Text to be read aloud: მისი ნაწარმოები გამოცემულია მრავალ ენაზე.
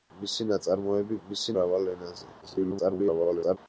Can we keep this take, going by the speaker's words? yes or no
no